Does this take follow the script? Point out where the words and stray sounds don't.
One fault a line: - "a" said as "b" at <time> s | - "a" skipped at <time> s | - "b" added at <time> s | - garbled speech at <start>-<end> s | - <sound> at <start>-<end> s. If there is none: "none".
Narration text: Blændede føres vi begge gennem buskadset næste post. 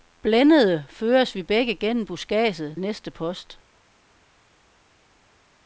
none